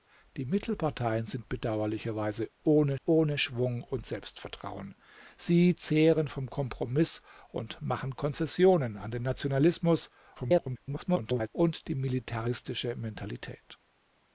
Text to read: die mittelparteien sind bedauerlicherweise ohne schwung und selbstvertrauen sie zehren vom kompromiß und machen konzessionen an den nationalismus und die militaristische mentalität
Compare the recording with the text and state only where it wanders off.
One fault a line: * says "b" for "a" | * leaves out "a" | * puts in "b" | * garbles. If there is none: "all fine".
* puts in "ohne"
* garbles